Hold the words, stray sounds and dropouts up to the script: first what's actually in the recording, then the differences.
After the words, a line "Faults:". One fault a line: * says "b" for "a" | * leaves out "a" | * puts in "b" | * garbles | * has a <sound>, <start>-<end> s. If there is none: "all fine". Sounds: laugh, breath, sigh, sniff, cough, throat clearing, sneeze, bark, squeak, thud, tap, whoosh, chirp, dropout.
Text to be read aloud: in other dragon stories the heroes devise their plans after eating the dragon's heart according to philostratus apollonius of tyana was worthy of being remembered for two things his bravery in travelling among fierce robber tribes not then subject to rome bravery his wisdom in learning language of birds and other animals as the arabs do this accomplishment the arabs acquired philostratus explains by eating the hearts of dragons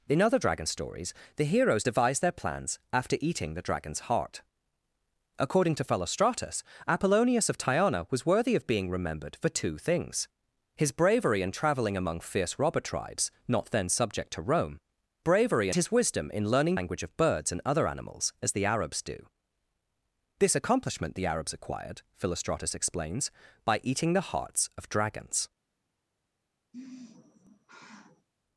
in other dragon stories the heroes devise their plans after eating the dragon's heart according to philostratus apollonius of tyana was worthy of being remembered for two things his bravery in travelling among fierce robber tribes not then subject to rome bravery his wisdom in learning language of birds and other animals as the arabs do this accomplishment the arabs acquired philostratus explains by eating the hearts of dragons
Faults:
* has a sigh, 26.7-28.3 s